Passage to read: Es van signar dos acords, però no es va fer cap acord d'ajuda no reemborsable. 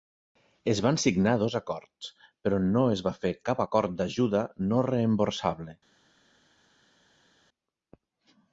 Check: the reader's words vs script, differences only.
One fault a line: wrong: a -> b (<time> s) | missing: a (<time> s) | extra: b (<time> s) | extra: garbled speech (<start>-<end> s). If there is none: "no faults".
no faults